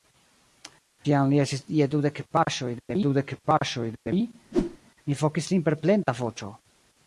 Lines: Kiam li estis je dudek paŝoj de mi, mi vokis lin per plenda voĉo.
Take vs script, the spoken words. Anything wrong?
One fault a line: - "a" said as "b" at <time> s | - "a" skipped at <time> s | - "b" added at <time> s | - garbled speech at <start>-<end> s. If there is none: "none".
- "dudek paŝoj de" added at 3.1 s